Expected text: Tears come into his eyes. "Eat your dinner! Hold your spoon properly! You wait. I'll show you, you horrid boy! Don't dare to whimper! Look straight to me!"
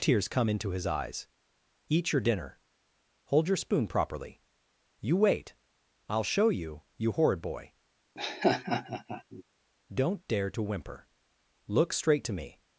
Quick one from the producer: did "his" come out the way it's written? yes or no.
yes